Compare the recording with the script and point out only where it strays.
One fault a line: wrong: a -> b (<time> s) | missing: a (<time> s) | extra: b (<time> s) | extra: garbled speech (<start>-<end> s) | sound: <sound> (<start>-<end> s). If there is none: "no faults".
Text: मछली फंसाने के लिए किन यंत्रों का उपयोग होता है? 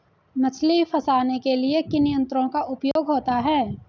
sound: dropout (2.9-3.0 s)